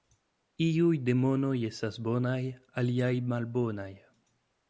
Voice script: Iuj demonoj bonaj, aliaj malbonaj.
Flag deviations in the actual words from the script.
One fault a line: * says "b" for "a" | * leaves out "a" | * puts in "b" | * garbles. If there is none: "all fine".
* puts in "estas"